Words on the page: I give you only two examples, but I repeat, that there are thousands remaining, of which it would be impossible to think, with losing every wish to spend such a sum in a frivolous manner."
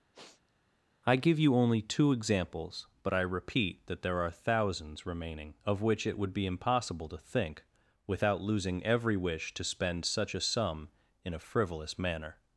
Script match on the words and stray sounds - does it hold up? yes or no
no